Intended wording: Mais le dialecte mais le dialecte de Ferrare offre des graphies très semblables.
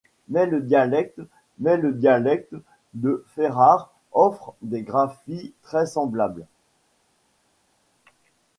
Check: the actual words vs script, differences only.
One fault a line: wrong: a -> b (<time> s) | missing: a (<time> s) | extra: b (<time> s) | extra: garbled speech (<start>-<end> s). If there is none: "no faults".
no faults